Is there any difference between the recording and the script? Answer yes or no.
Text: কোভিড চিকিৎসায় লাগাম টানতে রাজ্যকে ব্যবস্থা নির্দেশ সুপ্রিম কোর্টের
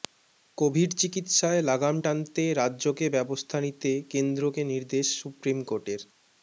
yes